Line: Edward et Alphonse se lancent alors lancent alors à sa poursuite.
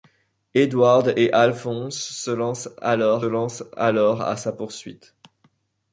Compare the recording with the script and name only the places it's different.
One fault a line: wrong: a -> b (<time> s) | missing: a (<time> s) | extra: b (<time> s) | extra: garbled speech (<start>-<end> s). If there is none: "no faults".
no faults